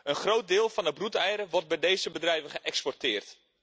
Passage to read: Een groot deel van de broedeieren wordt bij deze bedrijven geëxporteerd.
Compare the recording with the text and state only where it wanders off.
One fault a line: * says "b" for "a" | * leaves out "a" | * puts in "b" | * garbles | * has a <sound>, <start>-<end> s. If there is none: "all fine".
all fine